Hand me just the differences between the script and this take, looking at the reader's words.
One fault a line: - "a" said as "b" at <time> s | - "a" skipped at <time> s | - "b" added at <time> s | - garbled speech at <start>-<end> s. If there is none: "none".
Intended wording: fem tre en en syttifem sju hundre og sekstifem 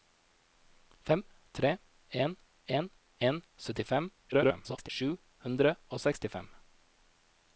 - "en" added at 3.3 s
- garbled speech at 4.3-4.9 s